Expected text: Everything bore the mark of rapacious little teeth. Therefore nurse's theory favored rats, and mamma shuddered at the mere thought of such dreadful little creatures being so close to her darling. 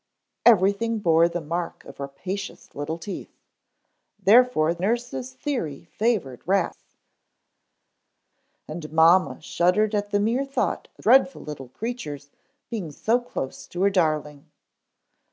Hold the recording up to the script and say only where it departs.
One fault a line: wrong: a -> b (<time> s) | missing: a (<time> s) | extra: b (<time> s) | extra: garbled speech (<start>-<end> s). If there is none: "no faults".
missing: such (11.1 s)